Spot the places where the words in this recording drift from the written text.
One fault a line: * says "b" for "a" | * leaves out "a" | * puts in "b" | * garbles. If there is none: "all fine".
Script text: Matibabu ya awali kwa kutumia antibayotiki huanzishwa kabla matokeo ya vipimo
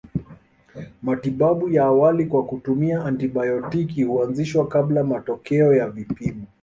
all fine